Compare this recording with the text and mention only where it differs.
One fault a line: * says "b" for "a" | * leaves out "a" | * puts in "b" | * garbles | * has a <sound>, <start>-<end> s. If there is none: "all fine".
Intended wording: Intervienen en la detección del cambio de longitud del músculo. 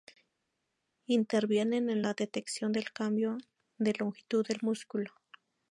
all fine